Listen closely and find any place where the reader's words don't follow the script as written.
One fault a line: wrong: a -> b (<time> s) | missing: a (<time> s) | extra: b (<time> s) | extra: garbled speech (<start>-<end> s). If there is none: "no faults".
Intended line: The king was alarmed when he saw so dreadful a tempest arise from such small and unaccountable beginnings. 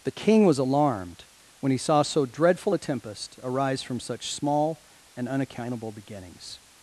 no faults